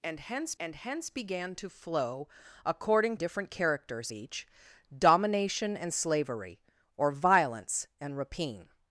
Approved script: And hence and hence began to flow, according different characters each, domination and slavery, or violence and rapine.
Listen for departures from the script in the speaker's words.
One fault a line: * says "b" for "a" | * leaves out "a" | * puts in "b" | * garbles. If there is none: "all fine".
all fine